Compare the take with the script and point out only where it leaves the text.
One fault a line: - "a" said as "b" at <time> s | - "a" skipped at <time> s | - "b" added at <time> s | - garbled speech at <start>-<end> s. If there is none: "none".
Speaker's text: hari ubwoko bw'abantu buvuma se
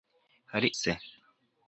- "ubwoko bw'abantu buvuma" skipped at 0.7 s